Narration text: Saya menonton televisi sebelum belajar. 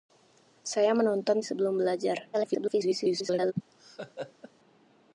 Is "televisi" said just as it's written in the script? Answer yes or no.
no